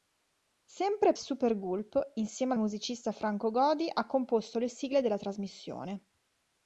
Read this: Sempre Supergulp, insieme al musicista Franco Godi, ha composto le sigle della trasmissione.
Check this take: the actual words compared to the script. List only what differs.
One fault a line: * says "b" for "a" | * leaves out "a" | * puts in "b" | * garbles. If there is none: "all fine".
all fine